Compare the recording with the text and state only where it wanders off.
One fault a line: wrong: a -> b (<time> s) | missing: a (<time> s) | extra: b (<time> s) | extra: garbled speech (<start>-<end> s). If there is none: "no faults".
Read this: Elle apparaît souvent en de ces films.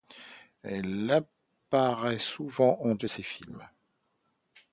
no faults